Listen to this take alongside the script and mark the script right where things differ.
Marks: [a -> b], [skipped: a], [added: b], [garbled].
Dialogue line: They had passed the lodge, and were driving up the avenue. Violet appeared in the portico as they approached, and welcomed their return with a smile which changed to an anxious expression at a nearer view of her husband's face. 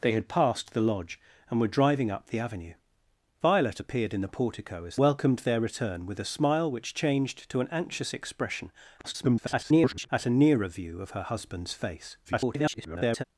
They had passed the lodge, and were driving up the avenue. Violet appeared in the portico as [skipped: they approached, and] welcomed their return with a smile which changed to an anxious expression [garbled] at a nearer view of her husband's face. [garbled]